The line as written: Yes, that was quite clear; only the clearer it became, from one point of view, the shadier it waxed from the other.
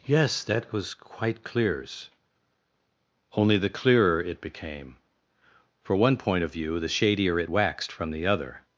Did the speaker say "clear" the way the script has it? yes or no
no